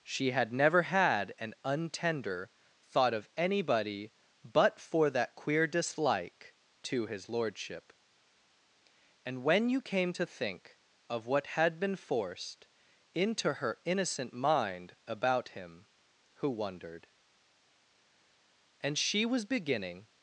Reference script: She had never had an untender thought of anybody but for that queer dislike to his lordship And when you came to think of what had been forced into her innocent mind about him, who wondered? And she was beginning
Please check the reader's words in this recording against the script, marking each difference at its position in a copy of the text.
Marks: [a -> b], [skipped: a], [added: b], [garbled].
She had never had an untender thought of anybody but for that queer dislike to his lordship And when you came to think of what had been forced into her innocent mind about him, who wondered? And she was beginning